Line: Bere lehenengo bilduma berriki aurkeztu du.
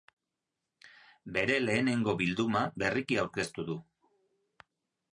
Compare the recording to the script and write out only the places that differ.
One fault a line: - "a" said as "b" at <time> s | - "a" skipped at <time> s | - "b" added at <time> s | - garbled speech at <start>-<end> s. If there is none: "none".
none